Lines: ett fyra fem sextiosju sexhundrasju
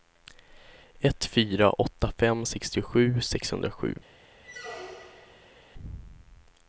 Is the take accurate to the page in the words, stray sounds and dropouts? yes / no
no